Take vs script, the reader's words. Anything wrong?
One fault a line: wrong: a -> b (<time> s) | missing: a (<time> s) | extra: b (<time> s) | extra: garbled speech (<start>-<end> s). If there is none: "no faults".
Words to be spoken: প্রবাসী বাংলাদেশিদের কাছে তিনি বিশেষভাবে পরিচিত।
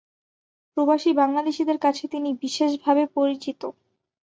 no faults